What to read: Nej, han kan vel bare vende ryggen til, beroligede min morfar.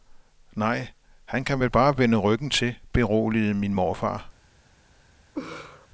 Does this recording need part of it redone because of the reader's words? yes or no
no